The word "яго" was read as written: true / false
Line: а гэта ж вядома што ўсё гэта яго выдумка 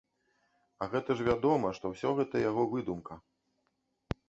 true